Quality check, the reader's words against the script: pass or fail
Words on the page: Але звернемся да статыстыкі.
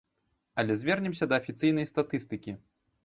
fail